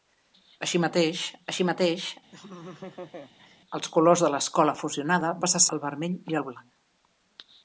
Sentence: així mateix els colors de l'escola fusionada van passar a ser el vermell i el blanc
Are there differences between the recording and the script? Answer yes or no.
yes